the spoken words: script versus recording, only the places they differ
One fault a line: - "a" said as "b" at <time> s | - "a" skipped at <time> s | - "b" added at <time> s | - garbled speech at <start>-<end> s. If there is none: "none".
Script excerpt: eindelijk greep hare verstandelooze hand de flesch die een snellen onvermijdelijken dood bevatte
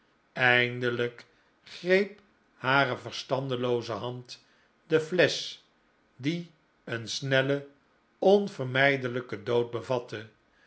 none